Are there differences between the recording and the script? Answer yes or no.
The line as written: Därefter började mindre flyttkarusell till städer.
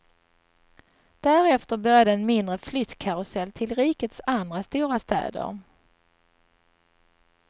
yes